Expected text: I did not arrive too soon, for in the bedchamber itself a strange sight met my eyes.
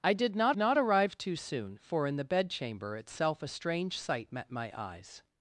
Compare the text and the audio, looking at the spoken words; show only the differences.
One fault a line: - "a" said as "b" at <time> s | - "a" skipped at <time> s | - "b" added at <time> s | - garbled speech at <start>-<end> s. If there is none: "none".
- "not" added at 0.6 s